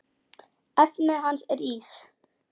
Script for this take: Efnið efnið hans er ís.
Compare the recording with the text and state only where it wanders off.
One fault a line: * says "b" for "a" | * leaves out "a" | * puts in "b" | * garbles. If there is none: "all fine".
* leaves out "efnið"